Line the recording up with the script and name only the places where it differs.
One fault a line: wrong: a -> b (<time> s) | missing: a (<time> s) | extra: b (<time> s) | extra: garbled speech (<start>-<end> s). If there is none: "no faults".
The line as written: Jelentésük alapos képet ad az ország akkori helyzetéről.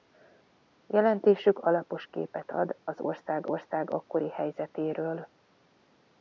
extra: ország (3.5 s)